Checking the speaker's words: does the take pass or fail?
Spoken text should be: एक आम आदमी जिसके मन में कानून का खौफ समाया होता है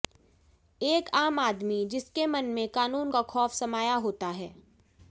pass